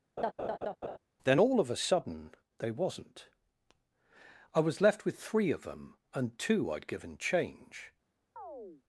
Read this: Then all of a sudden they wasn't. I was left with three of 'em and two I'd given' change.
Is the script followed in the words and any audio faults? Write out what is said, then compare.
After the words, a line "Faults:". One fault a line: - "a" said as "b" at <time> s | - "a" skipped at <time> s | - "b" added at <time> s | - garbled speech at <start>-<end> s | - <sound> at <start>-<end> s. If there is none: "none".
Then all of a sudden they wasn't. I was left with three of 'them and two I'd given' change.
Faults:
- laugh at 0.2-1.0 s
- "em" said as "them" at 5.6 s
- chirp at 8.4-8.8 s